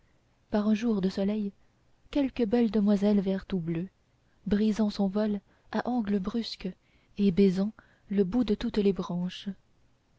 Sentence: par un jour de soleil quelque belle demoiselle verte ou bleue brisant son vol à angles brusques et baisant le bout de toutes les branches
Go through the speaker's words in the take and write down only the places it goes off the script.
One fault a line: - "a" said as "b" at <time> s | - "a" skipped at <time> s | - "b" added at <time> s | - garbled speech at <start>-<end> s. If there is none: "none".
none